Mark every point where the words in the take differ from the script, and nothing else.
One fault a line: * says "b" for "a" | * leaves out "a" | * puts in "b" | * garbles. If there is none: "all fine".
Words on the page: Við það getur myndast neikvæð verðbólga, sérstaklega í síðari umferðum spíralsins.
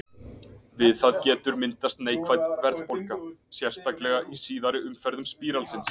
all fine